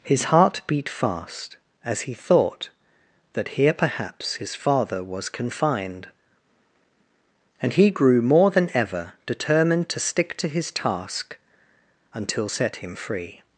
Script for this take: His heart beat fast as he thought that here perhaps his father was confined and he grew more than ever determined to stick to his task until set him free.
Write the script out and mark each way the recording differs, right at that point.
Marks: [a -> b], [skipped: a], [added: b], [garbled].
His heart beat fast as he thought that here perhaps his father was confined and he grew more than ever determined to stick to his task until set him free.